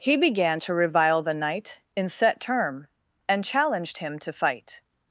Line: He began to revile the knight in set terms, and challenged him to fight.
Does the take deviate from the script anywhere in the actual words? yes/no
yes